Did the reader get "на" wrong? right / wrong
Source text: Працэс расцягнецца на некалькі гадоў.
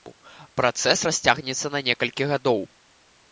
right